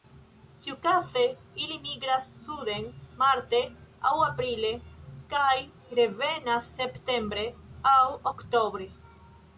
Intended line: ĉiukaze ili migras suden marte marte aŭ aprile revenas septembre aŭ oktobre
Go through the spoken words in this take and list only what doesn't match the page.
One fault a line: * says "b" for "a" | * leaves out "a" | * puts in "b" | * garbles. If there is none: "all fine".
* leaves out "marte"
* puts in "kaj"